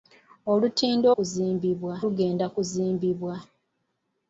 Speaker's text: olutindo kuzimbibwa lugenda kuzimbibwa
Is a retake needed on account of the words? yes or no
no